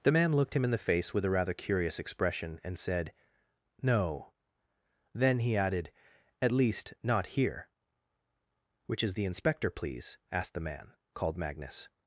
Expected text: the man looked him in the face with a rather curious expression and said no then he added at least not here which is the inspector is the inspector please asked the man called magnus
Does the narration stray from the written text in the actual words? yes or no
yes